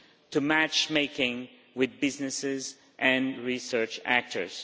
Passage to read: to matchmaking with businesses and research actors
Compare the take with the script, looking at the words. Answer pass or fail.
pass